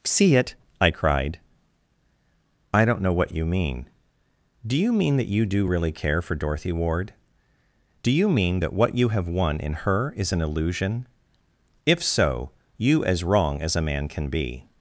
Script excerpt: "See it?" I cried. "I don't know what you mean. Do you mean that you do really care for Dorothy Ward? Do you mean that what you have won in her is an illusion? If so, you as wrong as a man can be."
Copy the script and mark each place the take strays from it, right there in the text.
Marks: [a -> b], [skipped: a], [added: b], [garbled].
"See it?" I cried. "I don't know what you mean. Do you mean that you do really care for Dorothy Ward? Do you mean that what you have won in her is an illusion? If so, you as wrong as a man can be."